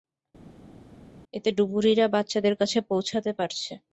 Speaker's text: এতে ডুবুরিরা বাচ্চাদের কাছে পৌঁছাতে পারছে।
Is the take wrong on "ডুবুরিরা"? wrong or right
right